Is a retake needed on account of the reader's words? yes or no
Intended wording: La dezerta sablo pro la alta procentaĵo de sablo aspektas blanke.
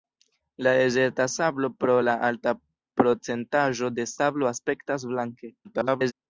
yes